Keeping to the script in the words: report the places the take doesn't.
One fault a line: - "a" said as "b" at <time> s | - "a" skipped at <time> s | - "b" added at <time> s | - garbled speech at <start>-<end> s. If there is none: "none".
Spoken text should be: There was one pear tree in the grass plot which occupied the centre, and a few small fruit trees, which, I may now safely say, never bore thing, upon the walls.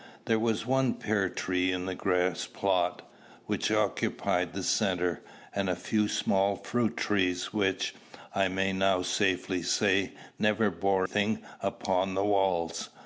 none